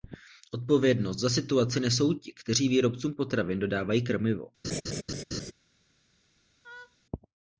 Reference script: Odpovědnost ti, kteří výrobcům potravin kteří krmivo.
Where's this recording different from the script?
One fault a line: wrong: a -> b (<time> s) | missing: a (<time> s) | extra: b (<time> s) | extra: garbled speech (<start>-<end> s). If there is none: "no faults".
extra: za situaci nesou (1.2 s)
wrong: kteří -> dodávají (3.6 s)